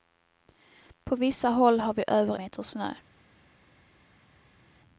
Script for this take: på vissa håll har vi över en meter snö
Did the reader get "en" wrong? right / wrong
wrong